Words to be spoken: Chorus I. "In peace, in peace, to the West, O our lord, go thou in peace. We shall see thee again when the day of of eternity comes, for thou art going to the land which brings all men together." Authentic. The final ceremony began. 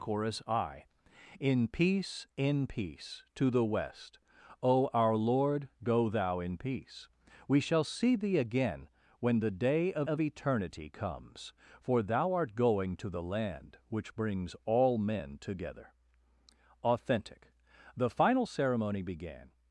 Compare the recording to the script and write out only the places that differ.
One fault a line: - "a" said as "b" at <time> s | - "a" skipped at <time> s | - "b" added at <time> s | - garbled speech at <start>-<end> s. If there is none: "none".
none